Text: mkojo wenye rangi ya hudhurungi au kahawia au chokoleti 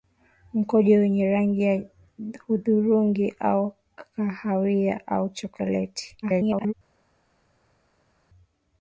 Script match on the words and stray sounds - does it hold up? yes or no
no